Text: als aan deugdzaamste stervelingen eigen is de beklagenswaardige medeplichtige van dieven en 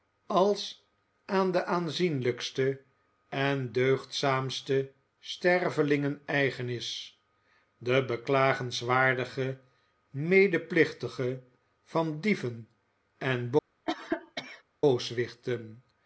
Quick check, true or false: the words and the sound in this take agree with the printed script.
false